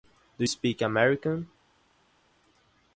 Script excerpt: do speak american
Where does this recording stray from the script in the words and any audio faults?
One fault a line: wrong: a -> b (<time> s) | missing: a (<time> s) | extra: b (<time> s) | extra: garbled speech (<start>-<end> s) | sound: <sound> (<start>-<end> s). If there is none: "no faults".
no faults